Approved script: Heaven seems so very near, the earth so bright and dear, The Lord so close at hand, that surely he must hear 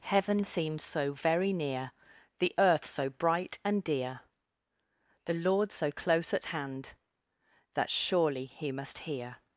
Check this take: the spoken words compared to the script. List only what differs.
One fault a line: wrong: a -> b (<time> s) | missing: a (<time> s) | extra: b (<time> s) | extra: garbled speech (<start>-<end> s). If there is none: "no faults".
no faults